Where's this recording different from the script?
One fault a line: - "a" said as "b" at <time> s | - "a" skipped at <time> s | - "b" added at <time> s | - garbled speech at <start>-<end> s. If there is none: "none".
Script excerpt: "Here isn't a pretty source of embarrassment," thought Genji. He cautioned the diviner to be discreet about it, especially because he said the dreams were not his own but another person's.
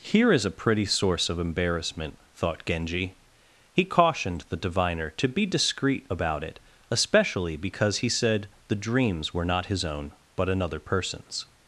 - "isn't" said as "is" at 0.3 s